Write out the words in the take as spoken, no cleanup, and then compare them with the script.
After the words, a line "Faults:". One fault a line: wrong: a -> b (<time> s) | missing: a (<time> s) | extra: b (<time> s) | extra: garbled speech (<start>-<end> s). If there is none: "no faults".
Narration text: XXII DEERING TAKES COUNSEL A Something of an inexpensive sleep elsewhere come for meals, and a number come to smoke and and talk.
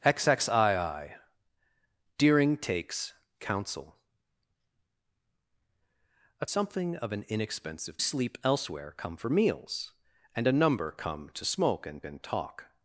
XXII DEERING TAKES COUNSEL A Something of an inexpensive sleep elsewhere come for meals, and a number come to smoke and and talk.
Faults:
no faults